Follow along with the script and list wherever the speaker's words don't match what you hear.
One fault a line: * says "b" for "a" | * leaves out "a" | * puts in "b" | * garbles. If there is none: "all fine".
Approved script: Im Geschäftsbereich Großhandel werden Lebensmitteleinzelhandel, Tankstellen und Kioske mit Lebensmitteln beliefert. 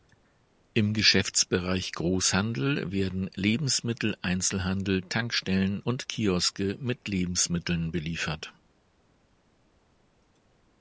all fine